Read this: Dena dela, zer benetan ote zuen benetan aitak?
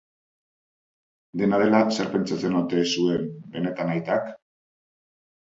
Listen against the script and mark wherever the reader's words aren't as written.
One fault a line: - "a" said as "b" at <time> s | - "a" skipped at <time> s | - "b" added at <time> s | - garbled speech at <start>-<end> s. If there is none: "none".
- "benetan" said as "pentsatzen" at 2.1 s